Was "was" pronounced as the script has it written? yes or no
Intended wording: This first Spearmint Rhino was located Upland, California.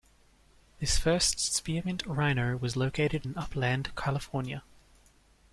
yes